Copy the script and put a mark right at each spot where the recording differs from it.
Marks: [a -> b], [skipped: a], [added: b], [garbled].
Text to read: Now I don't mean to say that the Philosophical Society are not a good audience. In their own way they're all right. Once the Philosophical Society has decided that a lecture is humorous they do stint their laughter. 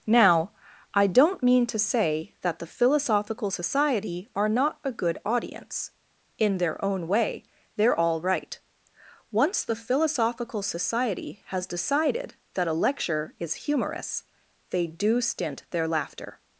Now I don't mean to say that the Philosophical Society are not a good audience. In their own way they're all right. Once the Philosophical Society has decided that a lecture is humorous they do stint their laughter.